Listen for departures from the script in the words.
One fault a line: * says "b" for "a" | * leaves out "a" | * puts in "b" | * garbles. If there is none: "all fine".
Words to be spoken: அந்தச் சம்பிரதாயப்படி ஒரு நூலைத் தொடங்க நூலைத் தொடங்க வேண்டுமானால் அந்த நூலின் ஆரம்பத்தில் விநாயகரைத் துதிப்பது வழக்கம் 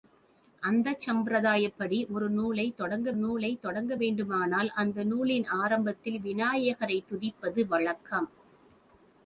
all fine